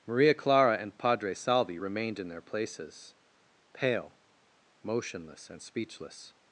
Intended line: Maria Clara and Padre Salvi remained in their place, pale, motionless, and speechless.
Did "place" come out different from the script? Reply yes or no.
yes